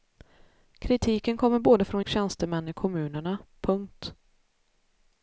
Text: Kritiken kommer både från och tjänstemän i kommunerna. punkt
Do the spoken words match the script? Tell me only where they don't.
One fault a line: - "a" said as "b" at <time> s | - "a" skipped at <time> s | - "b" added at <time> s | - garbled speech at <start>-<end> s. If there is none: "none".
none